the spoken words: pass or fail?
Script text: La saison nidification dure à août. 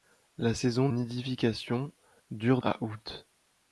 pass